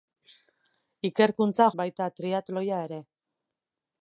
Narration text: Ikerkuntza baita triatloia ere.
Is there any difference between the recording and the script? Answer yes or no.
no